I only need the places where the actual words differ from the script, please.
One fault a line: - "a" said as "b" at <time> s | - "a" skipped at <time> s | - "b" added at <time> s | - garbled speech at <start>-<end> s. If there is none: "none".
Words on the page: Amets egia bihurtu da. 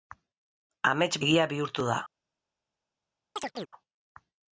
none